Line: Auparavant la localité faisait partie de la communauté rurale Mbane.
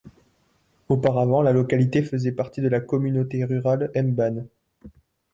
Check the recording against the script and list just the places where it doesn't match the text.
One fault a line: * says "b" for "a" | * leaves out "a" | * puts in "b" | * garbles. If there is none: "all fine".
all fine